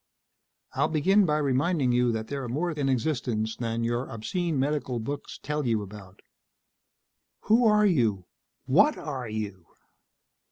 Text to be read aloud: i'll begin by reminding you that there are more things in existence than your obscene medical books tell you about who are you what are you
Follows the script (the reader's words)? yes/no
no